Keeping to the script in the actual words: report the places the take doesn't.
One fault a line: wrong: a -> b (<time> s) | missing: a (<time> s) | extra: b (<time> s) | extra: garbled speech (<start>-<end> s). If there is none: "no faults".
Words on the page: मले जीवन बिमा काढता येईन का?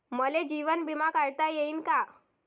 no faults